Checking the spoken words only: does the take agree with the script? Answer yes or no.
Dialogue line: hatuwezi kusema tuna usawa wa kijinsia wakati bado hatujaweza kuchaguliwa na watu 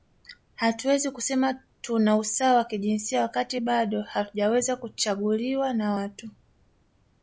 yes